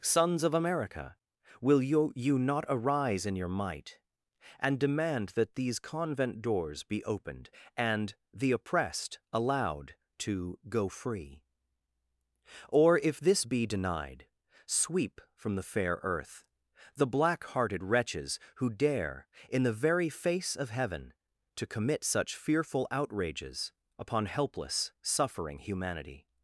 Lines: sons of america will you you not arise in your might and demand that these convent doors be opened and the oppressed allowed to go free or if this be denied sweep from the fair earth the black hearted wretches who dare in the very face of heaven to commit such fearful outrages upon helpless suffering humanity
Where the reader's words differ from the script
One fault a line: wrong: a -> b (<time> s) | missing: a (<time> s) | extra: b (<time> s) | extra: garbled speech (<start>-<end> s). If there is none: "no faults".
no faults